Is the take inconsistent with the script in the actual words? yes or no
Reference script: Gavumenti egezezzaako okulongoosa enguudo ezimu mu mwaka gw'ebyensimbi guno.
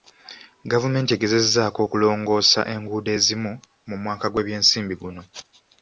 no